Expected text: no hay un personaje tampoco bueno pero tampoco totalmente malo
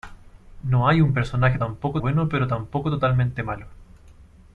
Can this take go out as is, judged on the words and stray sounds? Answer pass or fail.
pass